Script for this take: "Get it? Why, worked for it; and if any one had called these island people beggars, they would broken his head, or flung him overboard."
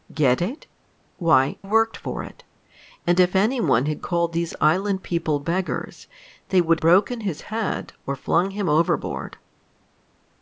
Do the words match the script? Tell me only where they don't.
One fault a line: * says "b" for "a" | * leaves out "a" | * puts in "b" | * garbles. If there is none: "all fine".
all fine